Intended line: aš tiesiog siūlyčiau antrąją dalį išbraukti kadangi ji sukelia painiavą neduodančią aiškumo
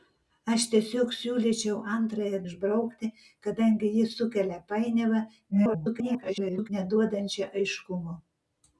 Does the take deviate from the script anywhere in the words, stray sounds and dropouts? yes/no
yes